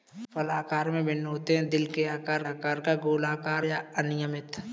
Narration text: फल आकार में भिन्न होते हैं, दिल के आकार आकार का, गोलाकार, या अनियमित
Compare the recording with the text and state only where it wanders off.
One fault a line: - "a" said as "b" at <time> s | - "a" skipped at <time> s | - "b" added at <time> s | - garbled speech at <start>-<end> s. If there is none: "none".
none